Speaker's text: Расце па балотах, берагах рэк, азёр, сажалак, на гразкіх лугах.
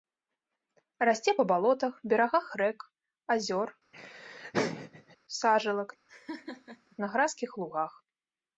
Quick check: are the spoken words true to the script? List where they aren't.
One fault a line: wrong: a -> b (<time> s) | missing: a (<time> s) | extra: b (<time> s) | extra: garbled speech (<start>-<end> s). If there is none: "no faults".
no faults